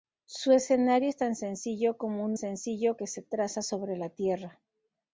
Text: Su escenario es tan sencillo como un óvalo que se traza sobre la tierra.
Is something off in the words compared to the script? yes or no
yes